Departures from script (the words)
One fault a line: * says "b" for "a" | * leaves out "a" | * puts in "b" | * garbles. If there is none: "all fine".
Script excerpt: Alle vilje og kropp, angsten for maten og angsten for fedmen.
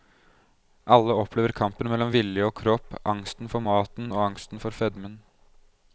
* puts in "opplever kampen mellom"